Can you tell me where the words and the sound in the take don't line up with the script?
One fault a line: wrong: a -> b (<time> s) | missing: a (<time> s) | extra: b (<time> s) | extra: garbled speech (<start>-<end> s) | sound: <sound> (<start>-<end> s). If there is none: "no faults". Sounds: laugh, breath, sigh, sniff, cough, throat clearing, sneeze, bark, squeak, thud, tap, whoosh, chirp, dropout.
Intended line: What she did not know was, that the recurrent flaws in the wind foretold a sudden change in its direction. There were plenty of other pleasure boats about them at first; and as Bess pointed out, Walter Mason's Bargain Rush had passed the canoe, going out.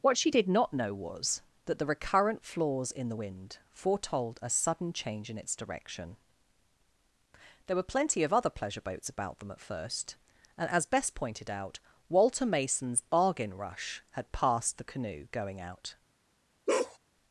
sound: bark (16.7-17.0 s)